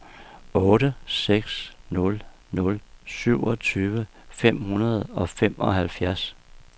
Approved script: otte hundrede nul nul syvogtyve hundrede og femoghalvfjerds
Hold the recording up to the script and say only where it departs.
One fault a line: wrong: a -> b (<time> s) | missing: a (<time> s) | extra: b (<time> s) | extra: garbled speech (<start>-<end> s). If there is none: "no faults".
wrong: hundrede -> seks (1.1 s)
extra: fem (4.3 s)